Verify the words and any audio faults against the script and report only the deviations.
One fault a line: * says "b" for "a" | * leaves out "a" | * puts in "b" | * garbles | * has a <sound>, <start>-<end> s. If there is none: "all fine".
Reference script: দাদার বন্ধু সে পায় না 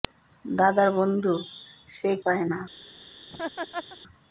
* has a laugh, 3.3-4.0 s